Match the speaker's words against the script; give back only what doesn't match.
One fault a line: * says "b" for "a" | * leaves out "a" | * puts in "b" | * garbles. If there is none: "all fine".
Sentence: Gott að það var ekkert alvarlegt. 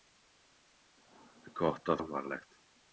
* leaves out "það var ekkert"